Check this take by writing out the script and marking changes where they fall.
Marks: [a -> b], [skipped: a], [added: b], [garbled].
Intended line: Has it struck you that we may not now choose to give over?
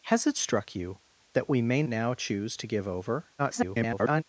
Has it struck you that we may [skipped: not] now choose to give over? [garbled]